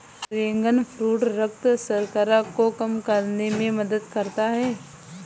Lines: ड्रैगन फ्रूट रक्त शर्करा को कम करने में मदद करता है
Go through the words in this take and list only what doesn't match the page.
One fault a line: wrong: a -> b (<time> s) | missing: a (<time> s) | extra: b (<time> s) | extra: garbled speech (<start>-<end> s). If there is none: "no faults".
no faults